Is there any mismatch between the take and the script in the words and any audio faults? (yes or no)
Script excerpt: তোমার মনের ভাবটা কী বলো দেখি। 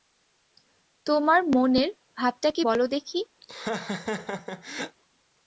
yes